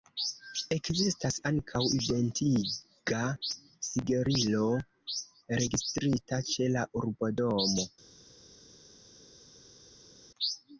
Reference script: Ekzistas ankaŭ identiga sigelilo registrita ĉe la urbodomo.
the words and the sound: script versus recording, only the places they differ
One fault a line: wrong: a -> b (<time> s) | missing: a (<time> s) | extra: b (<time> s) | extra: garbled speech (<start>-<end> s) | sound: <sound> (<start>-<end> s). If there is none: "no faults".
no faults